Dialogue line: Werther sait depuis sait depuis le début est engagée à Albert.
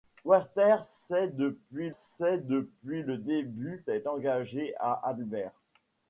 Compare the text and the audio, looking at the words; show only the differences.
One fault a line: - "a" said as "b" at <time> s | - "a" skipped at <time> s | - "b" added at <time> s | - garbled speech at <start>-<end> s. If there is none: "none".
none